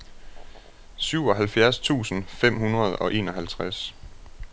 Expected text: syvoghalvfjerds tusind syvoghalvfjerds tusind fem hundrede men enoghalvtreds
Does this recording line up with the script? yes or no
no